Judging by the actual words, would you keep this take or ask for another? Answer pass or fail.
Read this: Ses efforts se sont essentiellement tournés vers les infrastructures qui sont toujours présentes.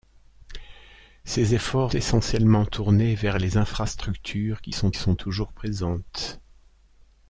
fail